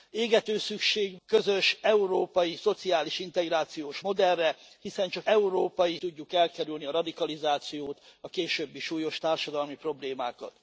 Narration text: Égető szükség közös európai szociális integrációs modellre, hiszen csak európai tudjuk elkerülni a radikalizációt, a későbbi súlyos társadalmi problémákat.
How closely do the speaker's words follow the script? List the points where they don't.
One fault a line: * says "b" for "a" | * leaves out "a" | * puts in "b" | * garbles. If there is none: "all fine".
all fine